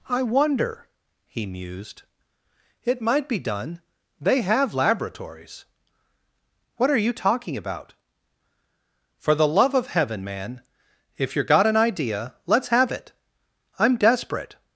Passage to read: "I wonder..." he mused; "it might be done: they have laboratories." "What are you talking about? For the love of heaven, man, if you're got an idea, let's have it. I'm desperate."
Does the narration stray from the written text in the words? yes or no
no